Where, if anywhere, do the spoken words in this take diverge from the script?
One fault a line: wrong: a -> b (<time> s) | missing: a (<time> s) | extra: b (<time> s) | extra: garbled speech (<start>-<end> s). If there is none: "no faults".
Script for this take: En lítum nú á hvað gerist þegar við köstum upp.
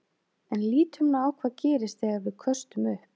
no faults